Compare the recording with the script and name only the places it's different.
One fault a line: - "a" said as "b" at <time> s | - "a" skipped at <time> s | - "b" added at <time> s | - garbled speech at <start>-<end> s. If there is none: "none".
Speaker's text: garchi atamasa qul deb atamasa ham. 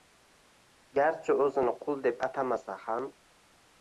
- "atamasa" said as "o‘zini" at 1.4 s